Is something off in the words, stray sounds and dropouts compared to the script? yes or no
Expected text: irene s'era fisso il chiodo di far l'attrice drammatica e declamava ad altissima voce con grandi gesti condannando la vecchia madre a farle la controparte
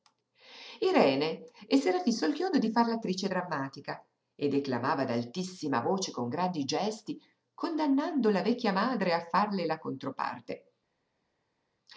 no